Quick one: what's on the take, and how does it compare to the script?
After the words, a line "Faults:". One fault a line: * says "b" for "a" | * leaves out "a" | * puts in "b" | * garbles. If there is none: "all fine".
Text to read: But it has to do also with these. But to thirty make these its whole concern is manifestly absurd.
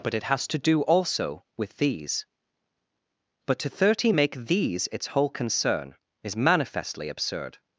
But it has to do also with these. But to thirty make these its whole concern is manifestly absurd.
Faults:
all fine